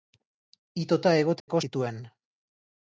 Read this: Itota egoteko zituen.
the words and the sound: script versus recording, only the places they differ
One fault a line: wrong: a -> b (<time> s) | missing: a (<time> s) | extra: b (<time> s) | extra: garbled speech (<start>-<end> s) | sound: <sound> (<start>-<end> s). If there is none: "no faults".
sound: dropout (1.4-1.5 s)